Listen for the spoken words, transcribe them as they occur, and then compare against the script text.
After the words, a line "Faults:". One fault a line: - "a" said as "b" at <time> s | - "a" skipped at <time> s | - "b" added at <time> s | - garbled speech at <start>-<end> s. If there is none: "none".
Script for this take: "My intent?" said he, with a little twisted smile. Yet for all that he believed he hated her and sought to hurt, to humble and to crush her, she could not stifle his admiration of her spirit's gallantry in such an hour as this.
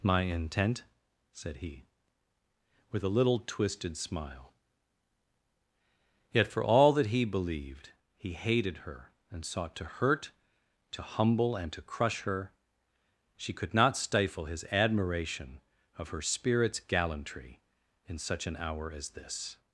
"My intent?" said he, with a little twisted smile. Yet for all that he believed he hated her and sought to hurt, to humble and to crush her, she could not stifle his admiration of her spirit's gallantry in such an hour as this.
Faults:
none